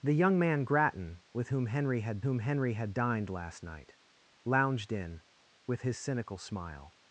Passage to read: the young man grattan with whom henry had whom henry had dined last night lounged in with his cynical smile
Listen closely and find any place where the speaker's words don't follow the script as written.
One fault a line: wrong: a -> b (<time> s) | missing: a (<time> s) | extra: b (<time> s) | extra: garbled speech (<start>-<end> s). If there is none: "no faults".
no faults